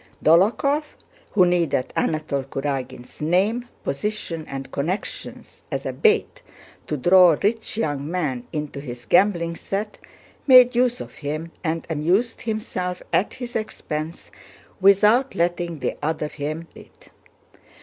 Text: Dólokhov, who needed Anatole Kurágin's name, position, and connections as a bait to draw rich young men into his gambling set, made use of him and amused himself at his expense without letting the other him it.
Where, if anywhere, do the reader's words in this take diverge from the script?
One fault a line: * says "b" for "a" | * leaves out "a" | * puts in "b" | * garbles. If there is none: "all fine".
all fine